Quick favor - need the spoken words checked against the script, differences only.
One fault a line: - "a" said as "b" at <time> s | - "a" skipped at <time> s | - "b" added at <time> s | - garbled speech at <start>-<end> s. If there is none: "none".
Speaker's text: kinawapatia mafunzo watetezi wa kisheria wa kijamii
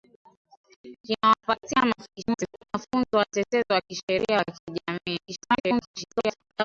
- garbled speech at 2.0-2.7 s
- garbled speech at 5.2-6.6 s